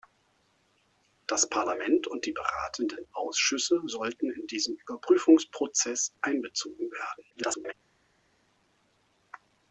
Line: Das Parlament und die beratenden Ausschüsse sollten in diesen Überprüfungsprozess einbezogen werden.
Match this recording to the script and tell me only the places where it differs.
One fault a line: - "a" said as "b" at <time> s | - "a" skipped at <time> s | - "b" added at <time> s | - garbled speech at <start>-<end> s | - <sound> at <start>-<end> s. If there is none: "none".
- garbled speech at 7.3-7.7 s